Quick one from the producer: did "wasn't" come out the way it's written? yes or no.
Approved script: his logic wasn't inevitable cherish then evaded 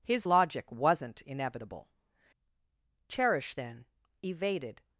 yes